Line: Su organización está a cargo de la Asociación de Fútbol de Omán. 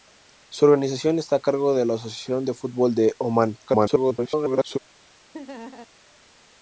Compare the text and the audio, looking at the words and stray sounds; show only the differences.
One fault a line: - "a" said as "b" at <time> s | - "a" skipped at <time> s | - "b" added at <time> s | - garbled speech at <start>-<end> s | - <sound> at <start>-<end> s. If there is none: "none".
- garbled speech at 3.7-4.8 s
- laugh at 5.3-5.9 s